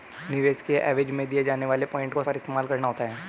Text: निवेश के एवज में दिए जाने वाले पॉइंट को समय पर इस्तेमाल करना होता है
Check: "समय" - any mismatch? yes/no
yes